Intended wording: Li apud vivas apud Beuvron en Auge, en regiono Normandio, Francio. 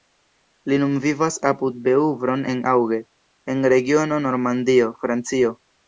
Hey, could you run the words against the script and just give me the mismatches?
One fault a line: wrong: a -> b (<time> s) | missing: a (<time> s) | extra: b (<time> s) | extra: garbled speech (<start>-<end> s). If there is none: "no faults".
wrong: apud -> nun (0.8 s)